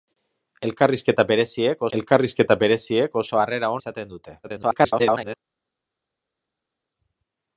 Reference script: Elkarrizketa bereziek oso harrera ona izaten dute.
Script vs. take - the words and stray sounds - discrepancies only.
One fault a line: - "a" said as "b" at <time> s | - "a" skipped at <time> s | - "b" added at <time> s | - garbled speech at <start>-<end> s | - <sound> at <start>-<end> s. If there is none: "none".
- "elkarrizketa bereziek" added at 2.0 s
- "ona" skipped at 3.7 s
- garbled speech at 4.4-5.4 s